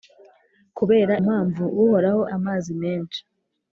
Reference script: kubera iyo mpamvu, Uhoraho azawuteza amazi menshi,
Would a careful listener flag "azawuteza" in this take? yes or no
yes